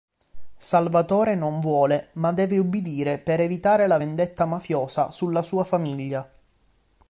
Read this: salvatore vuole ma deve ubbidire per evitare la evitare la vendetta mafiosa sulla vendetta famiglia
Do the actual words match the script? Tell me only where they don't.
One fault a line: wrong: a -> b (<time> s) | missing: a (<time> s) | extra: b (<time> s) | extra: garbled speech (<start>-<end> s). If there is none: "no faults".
extra: non (1.4 s)
missing: evitare la (4.0 s)
wrong: vendetta -> sua (5.4 s)